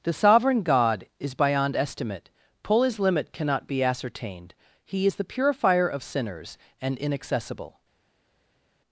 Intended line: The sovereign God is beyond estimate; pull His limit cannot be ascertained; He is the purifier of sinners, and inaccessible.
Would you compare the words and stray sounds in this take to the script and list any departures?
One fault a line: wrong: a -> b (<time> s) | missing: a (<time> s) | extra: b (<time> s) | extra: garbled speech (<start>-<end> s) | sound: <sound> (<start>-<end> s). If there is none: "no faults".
no faults